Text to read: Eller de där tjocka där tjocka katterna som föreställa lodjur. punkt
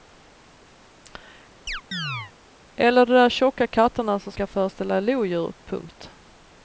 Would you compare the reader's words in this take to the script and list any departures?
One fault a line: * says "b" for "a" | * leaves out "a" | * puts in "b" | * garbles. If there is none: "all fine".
* leaves out "där tjocka"
* puts in "ska"